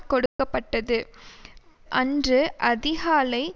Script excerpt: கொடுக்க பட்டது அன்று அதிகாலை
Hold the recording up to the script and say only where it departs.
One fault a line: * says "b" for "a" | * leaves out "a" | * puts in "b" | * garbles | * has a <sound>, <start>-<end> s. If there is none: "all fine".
* has a dropout, 0.3-0.4 s